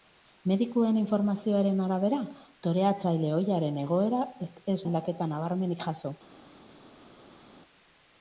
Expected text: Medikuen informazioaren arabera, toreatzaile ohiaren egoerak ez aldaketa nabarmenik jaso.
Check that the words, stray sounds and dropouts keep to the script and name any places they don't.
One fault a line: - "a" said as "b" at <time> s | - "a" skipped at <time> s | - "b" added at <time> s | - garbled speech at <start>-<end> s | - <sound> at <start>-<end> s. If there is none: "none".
none